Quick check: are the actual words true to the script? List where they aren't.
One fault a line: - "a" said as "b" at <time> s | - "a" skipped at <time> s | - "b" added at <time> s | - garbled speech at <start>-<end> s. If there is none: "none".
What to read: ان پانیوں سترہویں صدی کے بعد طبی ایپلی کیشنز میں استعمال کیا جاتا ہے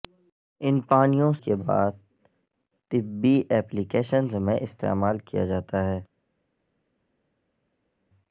- "سترہویں صدی" skipped at 1.3 s